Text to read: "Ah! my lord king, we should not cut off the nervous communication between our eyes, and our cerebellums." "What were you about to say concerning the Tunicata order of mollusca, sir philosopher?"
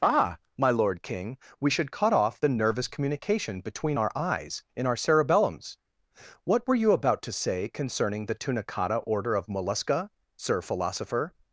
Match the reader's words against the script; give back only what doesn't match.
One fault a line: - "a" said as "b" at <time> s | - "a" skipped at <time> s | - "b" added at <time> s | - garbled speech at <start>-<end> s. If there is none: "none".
- "not" skipped at 1.9 s
- "and" said as "in" at 4.8 s